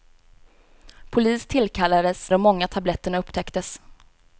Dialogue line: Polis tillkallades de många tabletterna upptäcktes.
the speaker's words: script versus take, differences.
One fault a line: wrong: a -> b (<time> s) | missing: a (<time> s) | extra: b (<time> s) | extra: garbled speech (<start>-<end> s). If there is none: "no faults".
no faults